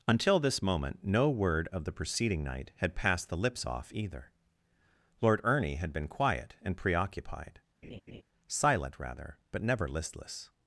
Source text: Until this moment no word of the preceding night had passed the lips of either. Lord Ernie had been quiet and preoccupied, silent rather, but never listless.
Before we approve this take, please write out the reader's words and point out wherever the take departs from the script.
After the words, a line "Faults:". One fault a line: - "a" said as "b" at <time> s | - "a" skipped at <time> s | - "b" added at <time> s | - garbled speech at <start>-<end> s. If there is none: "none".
Until this moment no word of the preceding night had passed the lips off either. Lord Ernie had been quiet and preoccupied, silent rather, but never listless.
Faults:
- "of" said as "off" at 3.6 s